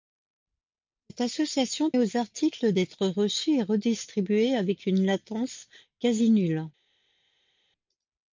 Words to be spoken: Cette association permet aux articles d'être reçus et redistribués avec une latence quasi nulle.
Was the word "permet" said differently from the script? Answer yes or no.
yes